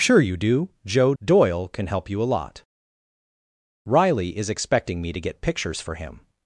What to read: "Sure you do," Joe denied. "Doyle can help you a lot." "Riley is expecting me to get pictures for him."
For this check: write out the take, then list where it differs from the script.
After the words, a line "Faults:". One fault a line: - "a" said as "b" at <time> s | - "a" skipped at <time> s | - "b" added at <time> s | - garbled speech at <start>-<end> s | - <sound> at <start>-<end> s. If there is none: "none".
"Sure you do," Joe. "Doyle can help you a lot." "Riley is expecting me to get pictures for him."
Faults:
- "denied" skipped at 1.1 s